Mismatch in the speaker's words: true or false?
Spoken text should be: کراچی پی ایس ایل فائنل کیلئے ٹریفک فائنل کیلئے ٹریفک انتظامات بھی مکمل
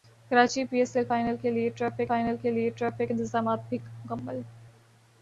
false